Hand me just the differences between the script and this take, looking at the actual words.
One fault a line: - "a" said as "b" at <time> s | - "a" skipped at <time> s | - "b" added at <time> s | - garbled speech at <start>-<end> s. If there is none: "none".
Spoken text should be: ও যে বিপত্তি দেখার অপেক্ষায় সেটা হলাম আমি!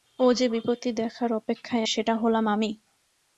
none